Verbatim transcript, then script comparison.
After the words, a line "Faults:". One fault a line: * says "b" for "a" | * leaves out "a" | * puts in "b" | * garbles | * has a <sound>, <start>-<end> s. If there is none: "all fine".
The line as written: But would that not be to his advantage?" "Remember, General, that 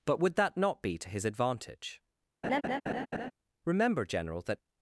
But would that not be to his advantage?" "Remember, General, that
Faults:
* has a laugh, 2.4-3.3 s